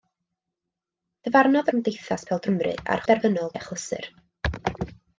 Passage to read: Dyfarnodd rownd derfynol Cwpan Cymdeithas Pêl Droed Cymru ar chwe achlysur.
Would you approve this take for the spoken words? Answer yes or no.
no